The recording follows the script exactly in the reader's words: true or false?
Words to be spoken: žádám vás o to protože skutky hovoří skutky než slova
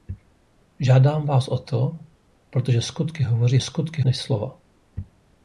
true